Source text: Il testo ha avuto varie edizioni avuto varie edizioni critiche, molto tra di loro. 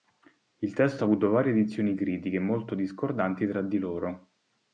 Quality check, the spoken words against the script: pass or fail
fail